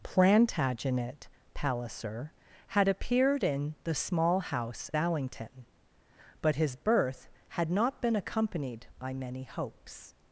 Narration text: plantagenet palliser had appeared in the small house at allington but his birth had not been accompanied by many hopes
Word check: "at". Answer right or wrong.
wrong